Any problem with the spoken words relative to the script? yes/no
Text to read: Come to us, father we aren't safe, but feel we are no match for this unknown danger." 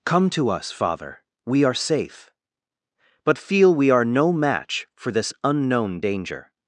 yes